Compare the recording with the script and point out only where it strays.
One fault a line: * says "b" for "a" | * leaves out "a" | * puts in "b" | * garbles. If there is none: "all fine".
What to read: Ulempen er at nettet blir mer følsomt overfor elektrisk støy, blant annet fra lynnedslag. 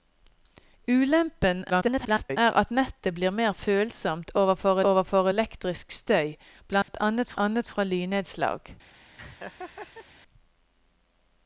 * garbles
* puts in "overfor"
* puts in "annet"